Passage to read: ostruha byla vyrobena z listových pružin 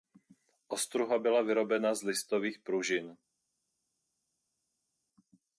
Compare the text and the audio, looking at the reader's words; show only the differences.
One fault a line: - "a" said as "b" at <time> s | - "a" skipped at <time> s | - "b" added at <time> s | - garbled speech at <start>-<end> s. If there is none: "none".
none